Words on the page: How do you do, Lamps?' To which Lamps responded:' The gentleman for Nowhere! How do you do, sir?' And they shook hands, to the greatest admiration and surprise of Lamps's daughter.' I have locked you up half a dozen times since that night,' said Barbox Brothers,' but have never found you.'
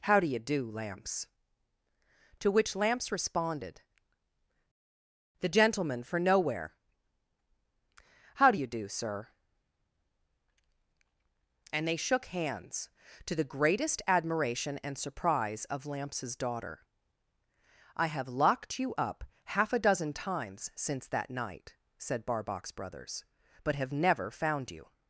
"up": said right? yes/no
yes